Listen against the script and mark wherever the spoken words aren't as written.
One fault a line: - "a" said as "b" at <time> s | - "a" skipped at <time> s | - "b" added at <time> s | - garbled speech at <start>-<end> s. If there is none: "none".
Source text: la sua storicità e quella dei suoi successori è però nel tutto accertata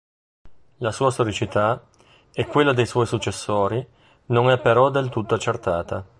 - "non" added at 4.3 s
- "nel" said as "del" at 4.9 s